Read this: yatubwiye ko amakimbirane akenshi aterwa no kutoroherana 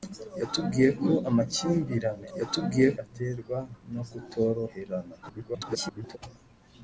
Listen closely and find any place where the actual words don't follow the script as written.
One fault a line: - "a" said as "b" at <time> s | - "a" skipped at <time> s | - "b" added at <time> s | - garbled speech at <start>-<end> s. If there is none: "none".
- "akenshi" said as "yatubwiye" at 2.4 s
- garbled speech at 5.2-6.2 s